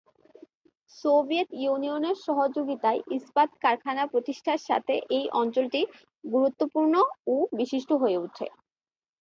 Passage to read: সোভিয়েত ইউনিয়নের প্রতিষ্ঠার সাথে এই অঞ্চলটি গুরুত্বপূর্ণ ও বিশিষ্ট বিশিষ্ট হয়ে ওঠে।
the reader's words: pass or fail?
fail